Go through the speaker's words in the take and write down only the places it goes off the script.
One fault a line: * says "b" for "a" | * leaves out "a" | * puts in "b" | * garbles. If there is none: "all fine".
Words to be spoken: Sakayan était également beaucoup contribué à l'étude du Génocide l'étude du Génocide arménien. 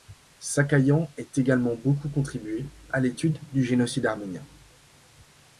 * says "est" for "était"
* leaves out "l'étude du Génocide"